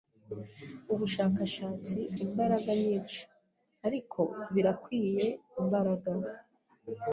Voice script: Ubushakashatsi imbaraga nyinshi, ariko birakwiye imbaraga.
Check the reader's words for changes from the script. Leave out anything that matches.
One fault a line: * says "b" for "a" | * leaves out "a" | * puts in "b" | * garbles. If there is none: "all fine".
all fine